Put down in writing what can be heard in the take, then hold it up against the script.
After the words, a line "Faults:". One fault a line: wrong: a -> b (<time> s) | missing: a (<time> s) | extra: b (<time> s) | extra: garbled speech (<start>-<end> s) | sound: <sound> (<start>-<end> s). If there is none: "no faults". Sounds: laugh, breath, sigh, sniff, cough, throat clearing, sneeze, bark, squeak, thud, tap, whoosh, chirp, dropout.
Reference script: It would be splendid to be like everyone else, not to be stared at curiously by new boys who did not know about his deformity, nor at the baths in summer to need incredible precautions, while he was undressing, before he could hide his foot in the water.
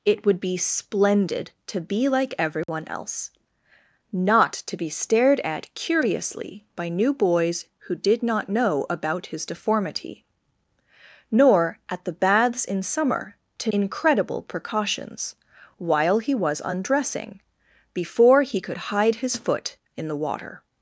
It would be splendid to be like everyone else, not to be stared at curiously by new boys who did not know about his deformity, nor at the baths in summer to incredible precautions, while he was undressing, before he could hide his foot in the water.
Faults:
sound: dropout (2.6-2.7 s)
missing: need (13.7 s)